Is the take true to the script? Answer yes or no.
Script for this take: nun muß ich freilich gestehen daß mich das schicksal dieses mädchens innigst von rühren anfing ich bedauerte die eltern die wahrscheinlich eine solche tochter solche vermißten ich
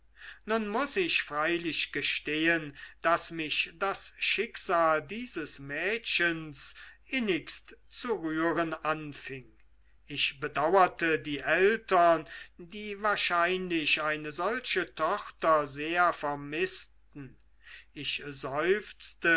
no